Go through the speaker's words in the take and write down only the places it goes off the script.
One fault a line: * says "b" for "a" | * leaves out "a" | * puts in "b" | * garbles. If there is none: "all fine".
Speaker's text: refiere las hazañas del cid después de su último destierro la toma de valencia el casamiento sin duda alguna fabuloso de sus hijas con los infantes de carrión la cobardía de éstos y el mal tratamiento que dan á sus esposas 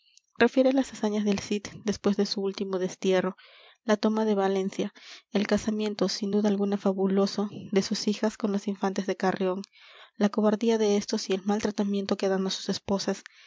all fine